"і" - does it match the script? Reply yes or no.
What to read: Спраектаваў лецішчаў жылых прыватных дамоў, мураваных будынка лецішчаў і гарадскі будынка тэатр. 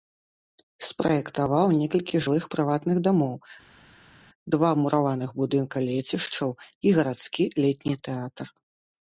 yes